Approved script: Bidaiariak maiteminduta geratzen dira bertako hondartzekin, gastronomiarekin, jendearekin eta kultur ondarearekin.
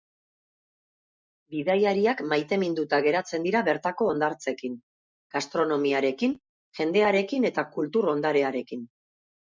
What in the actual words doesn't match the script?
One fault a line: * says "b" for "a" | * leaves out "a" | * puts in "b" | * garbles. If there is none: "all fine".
all fine